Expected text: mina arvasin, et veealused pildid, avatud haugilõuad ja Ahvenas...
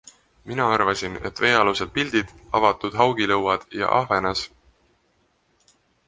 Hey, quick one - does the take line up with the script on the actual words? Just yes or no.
yes